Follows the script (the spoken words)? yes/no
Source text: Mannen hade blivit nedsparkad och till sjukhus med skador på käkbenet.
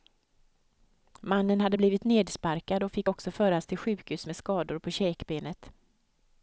no